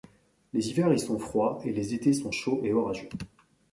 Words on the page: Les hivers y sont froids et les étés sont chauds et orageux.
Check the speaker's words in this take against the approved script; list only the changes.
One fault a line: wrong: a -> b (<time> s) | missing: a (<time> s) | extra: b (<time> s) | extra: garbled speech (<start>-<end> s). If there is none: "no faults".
no faults